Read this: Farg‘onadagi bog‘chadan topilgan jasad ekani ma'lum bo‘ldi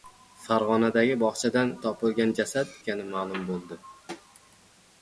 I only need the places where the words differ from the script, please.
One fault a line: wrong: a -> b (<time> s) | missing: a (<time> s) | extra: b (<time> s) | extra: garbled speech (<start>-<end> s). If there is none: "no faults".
no faults